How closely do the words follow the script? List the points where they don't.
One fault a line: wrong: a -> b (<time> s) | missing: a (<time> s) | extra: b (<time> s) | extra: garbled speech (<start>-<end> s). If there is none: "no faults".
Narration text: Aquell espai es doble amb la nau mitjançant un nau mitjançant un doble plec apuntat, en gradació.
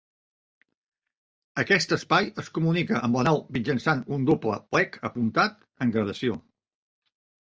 wrong: Aquell -> Aquest (1.6 s)
wrong: doble -> comunica (2.5 s)
missing: nau mitjançant un (4.3 s)